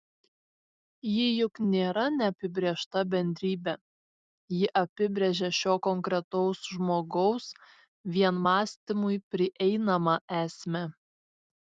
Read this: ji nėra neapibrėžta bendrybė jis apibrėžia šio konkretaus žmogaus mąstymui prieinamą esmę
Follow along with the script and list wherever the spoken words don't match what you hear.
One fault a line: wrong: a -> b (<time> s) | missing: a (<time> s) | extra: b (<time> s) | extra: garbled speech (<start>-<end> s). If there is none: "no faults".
extra: juk (1.4 s)
wrong: jis -> ji (4.6 s)
extra: vien (8.2 s)